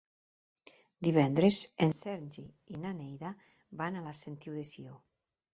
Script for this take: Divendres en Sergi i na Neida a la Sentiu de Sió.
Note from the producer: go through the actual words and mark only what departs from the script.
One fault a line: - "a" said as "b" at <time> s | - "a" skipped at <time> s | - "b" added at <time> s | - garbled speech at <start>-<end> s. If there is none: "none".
- "van" added at 3.8 s